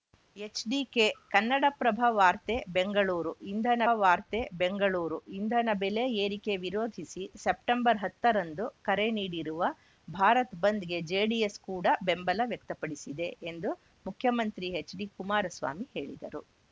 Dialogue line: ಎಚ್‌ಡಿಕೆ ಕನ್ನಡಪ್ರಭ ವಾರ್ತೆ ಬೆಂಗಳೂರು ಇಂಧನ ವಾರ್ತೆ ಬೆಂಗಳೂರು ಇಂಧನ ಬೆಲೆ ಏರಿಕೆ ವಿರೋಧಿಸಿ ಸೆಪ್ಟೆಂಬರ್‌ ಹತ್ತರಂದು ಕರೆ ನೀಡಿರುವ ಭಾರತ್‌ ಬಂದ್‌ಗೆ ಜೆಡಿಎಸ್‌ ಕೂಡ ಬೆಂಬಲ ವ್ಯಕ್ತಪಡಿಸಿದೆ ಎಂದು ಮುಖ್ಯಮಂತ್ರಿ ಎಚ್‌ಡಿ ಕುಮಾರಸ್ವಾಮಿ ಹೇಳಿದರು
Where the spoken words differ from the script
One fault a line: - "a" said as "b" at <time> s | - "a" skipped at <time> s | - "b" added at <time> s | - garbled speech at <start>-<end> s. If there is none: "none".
none